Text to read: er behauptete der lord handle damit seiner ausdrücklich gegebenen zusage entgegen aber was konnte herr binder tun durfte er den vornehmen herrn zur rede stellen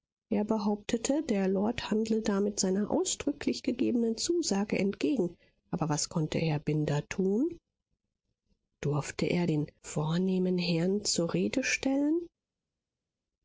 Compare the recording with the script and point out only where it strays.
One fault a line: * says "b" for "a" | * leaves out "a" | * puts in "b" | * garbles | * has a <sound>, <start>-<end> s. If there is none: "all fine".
all fine